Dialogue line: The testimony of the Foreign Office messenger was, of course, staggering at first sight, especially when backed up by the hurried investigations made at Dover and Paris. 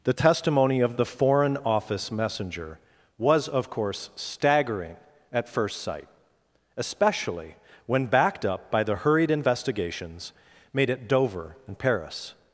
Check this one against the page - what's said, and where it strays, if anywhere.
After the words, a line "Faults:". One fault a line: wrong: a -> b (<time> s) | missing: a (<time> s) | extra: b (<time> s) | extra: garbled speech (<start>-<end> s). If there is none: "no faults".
The testimony of the Foreign Office messenger was, of course, staggering at first sight, especially when backed up by the hurried investigations made at Dover and Paris.
Faults:
no faults